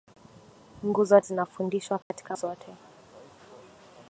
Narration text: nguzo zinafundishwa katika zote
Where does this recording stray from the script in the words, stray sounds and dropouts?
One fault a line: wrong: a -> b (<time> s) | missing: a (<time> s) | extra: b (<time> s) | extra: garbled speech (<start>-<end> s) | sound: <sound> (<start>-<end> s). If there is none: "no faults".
sound: dropout (2.0-2.1 s)